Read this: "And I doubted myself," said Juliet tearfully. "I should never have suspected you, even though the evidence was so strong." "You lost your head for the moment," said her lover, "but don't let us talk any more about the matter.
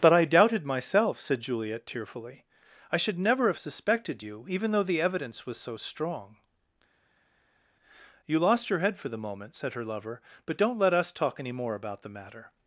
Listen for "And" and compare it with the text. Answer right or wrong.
wrong